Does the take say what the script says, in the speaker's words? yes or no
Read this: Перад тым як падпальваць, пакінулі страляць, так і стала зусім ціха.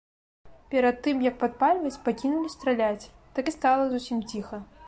yes